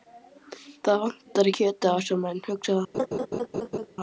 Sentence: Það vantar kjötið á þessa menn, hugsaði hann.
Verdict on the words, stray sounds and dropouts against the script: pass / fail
fail